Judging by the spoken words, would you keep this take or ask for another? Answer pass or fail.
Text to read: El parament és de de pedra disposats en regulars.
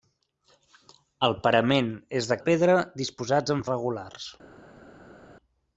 pass